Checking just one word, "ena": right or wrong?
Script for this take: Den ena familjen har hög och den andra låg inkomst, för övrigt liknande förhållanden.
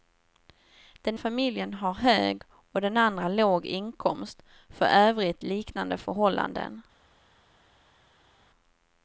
wrong